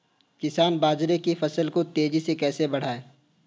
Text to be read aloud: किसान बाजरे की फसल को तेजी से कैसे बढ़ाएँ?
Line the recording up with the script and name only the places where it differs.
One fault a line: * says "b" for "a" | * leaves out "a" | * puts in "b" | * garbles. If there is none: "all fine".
all fine